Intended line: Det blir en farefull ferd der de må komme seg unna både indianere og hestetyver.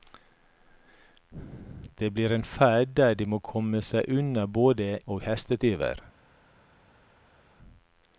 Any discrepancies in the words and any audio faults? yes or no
yes